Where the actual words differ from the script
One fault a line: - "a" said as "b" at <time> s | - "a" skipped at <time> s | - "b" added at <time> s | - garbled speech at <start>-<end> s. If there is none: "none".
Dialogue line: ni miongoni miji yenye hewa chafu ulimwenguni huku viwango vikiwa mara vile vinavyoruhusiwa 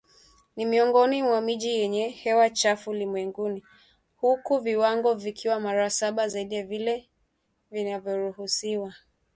- "mwa" added at 1.2 s
- "saba zaidi ya" added at 5.9 s